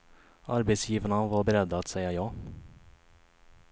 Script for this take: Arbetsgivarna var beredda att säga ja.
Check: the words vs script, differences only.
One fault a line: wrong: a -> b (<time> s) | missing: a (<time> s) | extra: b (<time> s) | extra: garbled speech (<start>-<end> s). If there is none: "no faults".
no faults